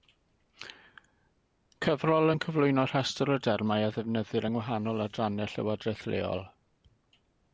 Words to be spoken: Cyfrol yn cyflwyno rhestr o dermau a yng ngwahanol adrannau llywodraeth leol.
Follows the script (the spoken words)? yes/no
no